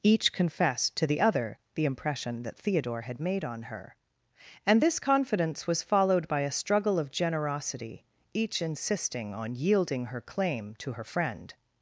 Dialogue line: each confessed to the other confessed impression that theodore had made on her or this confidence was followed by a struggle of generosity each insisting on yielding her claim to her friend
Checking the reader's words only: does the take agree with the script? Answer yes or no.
no